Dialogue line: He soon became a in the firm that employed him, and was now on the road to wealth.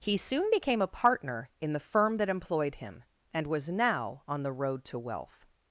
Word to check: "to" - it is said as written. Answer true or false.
true